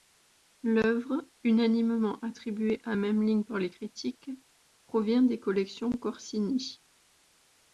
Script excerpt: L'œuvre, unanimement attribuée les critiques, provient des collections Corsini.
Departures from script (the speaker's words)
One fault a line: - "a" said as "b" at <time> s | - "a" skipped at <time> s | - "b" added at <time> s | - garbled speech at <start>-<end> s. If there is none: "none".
- "à Memling par" added at 2.8 s